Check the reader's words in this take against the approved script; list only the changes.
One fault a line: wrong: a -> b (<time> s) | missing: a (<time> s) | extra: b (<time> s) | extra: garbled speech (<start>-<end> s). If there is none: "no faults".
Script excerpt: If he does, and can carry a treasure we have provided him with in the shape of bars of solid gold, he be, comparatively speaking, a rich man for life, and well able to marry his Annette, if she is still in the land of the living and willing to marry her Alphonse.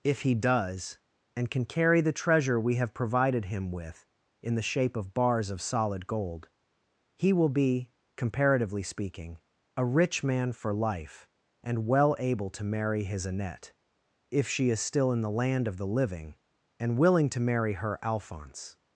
wrong: a -> the (2.0 s)
extra: will (7.3 s)